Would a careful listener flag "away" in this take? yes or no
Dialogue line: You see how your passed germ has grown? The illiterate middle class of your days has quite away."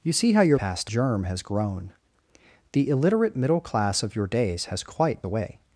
no